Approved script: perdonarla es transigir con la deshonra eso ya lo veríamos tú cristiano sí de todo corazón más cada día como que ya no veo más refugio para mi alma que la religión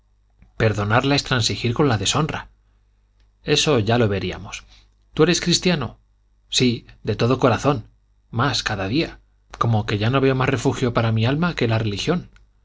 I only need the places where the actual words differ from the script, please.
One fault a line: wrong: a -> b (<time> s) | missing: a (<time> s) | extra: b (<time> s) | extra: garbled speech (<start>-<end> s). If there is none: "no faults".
extra: eres (5.2 s)